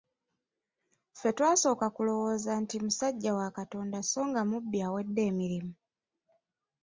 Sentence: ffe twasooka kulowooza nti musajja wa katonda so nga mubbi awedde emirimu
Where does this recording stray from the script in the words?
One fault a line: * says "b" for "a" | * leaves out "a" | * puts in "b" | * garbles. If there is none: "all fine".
all fine